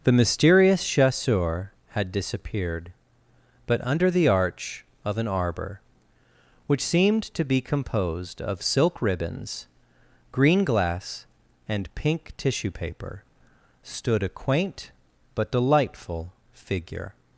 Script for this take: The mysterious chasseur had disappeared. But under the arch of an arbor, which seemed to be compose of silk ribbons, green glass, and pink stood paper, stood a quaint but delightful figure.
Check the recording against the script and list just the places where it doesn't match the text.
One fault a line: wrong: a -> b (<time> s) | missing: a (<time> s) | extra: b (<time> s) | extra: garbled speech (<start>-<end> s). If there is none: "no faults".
wrong: compose -> composed (7.6 s)
wrong: stood -> tissue (12.4 s)